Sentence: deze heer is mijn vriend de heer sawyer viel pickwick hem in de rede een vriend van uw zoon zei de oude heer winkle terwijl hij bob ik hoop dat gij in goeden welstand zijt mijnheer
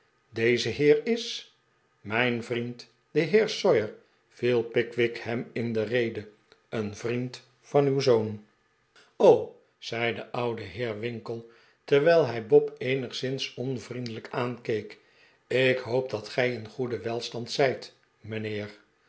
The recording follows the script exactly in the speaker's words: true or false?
false